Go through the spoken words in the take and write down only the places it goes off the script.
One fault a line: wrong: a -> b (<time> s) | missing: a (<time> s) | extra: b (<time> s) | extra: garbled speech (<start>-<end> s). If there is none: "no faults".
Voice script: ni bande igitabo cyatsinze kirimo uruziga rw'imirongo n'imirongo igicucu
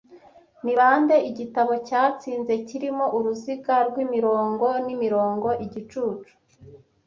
no faults